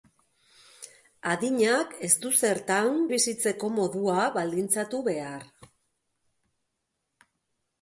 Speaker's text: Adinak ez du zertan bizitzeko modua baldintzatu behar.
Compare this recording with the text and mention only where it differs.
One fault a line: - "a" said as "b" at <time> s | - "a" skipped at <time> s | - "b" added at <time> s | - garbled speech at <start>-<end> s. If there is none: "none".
none